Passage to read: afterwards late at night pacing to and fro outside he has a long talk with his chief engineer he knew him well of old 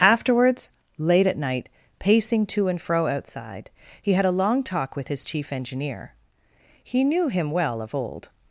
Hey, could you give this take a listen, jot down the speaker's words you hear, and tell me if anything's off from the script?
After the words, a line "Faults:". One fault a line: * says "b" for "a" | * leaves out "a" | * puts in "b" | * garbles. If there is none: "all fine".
afterwards late at night pacing to and fro outside he had a long talk with his chief engineer he knew him well of old
Faults:
* says "had" for "has"